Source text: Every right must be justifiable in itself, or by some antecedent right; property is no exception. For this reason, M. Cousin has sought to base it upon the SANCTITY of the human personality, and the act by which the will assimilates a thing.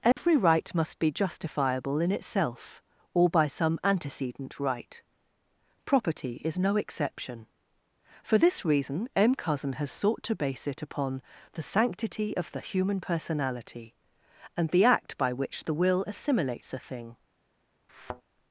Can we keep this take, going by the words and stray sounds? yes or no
no